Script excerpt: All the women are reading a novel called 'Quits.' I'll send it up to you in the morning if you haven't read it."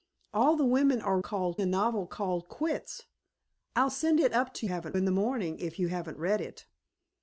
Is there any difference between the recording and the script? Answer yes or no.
yes